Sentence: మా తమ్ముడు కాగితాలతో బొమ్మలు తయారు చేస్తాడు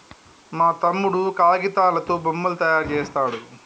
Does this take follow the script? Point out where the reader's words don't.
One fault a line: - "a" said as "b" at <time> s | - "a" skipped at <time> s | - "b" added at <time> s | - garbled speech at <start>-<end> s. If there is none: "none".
none